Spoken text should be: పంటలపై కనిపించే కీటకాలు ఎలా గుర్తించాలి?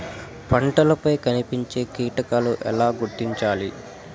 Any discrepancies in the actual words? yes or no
no